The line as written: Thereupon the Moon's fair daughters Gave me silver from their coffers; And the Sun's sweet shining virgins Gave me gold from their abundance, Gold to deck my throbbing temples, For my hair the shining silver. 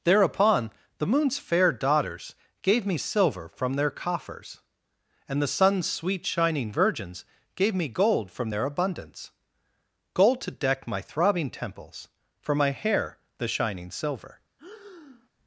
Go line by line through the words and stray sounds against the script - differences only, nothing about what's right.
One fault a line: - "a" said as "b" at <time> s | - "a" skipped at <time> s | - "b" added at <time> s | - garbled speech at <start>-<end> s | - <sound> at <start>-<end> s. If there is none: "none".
- breath at 14.6-15.3 s